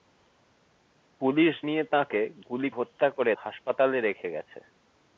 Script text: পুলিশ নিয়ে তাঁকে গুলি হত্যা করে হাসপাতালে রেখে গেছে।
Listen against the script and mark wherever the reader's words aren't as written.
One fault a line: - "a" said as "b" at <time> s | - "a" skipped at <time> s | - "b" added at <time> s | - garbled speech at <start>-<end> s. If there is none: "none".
none